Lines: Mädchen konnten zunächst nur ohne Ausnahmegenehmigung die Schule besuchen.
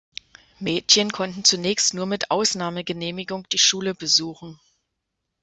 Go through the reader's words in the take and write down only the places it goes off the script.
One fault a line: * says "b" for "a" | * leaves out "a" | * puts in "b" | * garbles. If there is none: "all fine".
* says "mit" for "ohne"